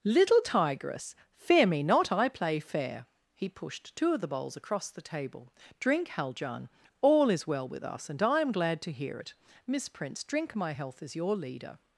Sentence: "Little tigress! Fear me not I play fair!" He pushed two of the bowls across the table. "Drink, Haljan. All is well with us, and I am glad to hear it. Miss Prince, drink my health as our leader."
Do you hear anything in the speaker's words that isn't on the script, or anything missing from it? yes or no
yes